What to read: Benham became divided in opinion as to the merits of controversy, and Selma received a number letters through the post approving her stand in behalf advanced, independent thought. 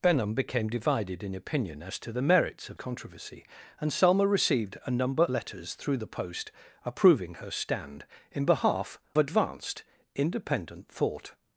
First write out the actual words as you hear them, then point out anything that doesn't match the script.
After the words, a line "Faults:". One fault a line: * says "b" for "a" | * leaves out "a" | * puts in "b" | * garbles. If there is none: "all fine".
Benham became divided in opinion as to the merits of controversy, and Selma received a number letters through the post approving her stand in behalf advanced, independent thought.
Faults:
all fine